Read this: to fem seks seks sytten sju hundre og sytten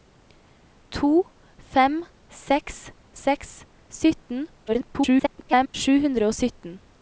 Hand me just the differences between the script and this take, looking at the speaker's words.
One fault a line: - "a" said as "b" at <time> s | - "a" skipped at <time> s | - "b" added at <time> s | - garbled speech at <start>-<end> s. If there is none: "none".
- garbled speech at 4.7-5.7 s